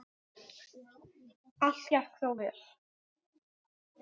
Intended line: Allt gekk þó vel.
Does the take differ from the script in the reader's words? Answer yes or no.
no